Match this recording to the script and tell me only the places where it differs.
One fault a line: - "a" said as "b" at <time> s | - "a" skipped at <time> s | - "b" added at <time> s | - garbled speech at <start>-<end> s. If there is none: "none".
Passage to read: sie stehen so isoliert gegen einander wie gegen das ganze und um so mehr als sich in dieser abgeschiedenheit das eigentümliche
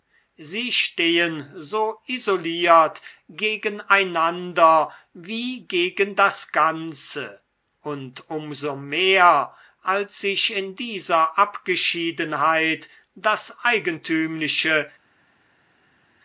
none